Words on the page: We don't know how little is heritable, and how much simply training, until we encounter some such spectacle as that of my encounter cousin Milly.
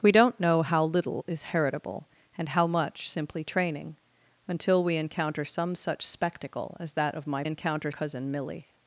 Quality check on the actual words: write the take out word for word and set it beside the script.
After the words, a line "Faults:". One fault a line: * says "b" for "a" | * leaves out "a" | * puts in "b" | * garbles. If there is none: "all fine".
We don't know how little is heritable, and how much simply training, until we encounter some such spectacle as that of my encounter cousin Milly.
Faults:
all fine